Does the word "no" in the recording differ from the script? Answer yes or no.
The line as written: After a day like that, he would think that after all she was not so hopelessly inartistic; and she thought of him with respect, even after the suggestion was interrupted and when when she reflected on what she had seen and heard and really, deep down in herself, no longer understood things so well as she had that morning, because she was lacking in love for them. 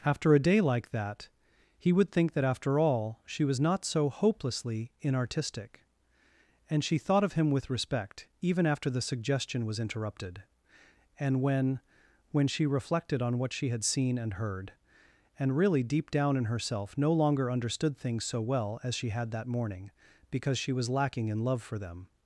no